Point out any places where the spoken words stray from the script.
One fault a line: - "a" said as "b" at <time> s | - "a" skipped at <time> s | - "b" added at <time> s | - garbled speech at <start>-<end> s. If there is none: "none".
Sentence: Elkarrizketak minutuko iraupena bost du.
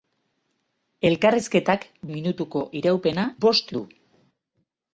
none